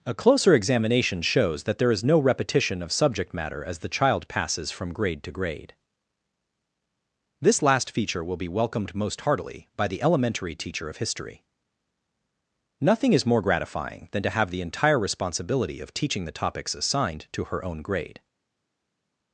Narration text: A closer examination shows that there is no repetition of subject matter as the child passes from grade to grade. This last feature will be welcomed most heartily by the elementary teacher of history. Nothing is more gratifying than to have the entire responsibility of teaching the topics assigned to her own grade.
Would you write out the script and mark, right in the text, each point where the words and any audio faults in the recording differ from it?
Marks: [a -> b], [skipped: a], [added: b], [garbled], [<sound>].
A closer examination shows that there is no repetition of subject matter as the child passes from grade to grade. This last feature will be welcomed most heartily by the elementary teacher of history. Nothing is more gratifying than to have the entire responsibility of teaching the topics assigned to her own grade.